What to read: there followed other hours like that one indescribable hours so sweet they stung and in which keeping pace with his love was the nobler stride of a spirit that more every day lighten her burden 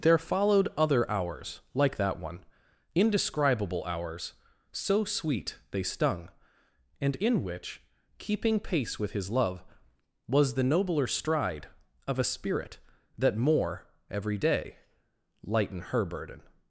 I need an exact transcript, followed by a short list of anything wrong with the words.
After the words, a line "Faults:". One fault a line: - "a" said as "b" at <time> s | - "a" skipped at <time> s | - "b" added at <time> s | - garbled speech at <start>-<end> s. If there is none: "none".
there followed other hours like that one indescribable hours so sweet they stung and in which keeping pace with his love was the nobler stride of a spirit that more every day lighten her burden
Faults:
none